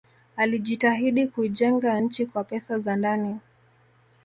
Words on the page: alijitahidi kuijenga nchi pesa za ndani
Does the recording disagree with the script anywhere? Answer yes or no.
yes